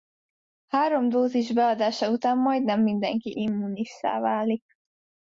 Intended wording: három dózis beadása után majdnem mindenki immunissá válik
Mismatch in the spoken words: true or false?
false